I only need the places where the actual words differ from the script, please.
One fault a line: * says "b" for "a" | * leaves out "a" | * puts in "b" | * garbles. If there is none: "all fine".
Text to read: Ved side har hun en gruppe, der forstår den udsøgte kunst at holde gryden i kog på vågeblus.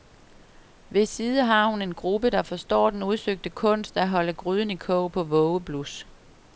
all fine